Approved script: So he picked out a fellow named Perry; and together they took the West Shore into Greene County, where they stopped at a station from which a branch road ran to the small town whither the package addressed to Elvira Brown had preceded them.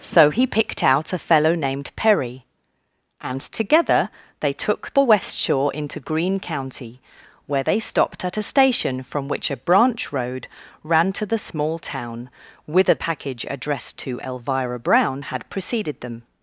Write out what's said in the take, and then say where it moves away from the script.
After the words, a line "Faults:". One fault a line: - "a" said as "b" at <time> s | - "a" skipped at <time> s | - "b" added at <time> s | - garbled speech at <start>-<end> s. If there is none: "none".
So he picked out a fellow named Perry; and together they took the West Shore into Greene County, where they stopped at a station from which a branch road ran to the small town whither package addressed to Elvira Brown had preceded them.
Faults:
- "the" skipped at 12.9 s